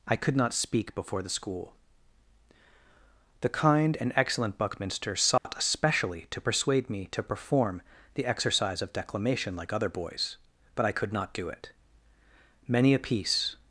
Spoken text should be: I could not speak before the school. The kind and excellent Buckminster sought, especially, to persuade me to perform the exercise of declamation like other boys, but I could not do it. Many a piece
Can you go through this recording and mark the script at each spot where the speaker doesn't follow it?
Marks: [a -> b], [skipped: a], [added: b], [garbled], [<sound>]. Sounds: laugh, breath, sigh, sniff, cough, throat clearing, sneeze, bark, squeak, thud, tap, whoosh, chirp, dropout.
I could not speak before the school. The kind and excellent Buckminster sought, [dropout] especially, to persuade me to perform the exercise of declamation like other boys, but I could not do it. Many a piece